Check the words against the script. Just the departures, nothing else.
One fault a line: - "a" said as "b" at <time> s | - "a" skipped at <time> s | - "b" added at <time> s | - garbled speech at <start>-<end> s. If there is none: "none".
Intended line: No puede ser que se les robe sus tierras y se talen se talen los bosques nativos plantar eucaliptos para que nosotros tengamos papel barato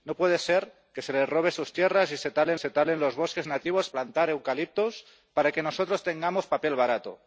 none